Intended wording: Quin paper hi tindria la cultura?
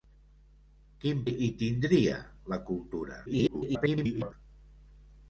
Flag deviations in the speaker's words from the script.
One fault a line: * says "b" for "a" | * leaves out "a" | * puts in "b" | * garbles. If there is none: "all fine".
* leaves out "paper"
* garbles